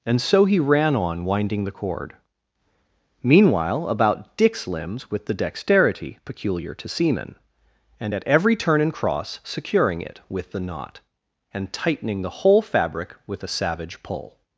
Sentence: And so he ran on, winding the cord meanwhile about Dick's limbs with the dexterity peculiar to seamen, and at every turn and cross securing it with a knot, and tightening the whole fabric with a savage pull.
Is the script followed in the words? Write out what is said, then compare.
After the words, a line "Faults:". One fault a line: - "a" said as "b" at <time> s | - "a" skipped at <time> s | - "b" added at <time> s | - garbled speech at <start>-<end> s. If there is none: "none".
And so he ran on, winding the cord meanwhile about Dick's limbs with the dexterity peculiar to seamen, and at every turn and cross securing it with the knot, and tightening the whole fabric with a savage pull.
Faults:
- "a" said as "the" at 10.5 s